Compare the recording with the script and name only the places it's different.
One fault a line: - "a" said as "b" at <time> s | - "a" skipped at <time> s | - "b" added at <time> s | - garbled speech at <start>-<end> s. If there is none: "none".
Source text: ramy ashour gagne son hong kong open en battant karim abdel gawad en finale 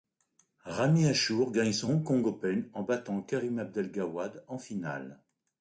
none